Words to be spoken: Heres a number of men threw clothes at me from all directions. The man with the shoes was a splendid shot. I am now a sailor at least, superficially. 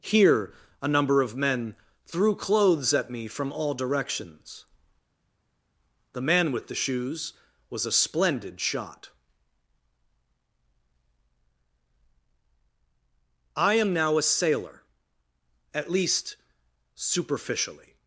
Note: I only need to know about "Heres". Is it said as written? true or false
false